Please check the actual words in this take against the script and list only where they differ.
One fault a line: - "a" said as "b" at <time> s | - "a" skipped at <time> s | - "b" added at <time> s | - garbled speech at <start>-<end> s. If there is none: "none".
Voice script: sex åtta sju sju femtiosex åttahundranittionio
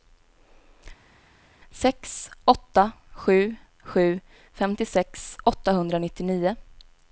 none